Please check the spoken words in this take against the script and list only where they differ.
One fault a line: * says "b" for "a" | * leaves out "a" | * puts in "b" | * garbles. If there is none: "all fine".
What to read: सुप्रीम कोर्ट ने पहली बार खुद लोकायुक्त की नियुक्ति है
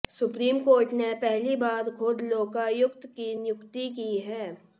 * puts in "की"